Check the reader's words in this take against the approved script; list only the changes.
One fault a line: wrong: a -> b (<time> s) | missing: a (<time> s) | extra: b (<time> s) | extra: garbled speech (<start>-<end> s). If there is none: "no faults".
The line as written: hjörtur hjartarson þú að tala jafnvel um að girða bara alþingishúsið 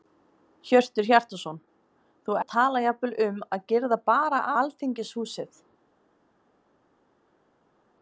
no faults